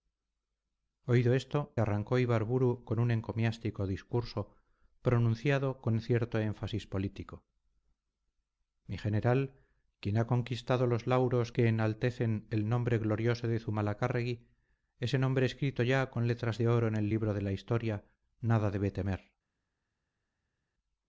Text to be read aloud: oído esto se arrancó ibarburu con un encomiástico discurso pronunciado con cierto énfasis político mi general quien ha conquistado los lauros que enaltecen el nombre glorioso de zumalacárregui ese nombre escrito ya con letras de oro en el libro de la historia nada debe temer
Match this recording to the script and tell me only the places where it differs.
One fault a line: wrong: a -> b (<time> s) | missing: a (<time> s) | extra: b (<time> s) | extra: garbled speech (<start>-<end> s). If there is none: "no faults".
missing: se (1.8 s)